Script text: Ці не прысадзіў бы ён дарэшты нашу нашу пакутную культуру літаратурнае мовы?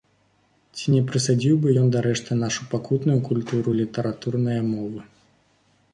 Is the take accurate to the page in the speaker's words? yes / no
no